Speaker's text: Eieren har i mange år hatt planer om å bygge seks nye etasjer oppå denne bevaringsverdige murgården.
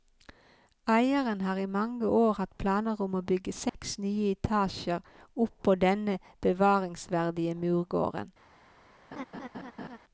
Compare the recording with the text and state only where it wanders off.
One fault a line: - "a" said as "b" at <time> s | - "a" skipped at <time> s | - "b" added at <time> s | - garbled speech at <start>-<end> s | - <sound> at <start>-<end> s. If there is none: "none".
- dropout at 3.7-3.7 s
- laugh at 9.1-10.0 s